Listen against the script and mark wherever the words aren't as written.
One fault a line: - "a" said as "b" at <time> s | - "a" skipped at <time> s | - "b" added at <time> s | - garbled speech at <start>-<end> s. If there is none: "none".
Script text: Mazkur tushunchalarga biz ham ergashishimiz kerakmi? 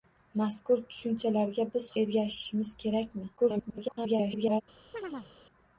- "ham" skipped at 1.9 s
- garbled speech at 3.4-4.6 s